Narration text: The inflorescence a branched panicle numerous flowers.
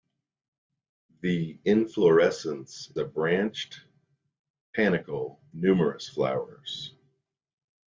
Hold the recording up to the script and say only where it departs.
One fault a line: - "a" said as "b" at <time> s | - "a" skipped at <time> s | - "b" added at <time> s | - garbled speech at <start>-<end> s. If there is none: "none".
none